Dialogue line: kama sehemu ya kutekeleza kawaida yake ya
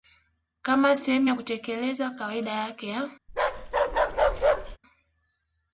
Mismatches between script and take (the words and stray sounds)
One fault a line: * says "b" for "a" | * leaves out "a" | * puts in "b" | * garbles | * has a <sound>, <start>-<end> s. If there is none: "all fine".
* has a bark, 3.3-4.8 s